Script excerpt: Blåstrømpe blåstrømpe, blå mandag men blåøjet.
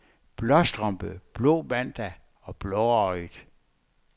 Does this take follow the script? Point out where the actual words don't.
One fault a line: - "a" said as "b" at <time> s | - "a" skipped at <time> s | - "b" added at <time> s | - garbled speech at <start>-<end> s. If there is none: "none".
- "blåstrømpe" skipped at 1.2 s
- "men" said as "og" at 2.4 s